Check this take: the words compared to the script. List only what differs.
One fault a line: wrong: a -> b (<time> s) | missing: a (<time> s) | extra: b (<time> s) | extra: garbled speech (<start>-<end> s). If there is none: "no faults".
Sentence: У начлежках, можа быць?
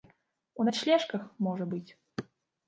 no faults